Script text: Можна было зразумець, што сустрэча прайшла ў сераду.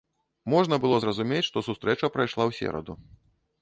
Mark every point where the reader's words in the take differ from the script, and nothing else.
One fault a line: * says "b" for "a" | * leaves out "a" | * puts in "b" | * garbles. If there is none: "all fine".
all fine